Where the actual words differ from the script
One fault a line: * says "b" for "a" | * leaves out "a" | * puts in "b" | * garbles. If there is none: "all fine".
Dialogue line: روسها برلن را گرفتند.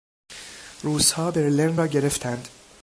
all fine